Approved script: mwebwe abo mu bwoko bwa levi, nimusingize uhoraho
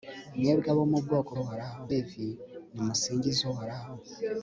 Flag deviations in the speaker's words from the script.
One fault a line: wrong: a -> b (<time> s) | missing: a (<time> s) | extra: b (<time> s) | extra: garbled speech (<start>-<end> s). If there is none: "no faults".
wrong: bwa -> uhoraho (1.4 s)